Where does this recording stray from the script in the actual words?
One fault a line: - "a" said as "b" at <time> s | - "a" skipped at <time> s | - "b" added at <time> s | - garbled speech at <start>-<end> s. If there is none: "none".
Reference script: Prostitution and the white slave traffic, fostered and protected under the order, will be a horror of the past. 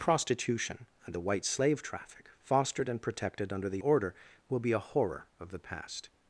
none